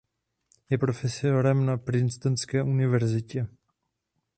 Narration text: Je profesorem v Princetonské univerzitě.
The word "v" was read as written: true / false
false